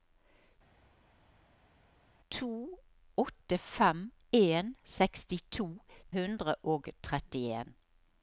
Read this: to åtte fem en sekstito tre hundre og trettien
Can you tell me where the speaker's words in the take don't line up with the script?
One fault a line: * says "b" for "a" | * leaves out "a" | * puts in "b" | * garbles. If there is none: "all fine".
* leaves out "tre"